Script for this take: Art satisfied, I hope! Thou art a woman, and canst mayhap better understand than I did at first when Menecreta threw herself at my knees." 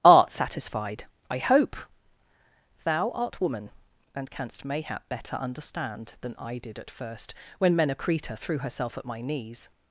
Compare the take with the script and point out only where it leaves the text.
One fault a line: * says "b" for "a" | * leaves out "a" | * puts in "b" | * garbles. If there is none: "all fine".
* leaves out "a"